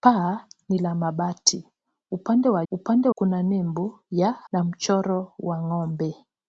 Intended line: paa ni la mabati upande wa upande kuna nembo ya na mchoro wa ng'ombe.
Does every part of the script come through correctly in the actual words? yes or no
yes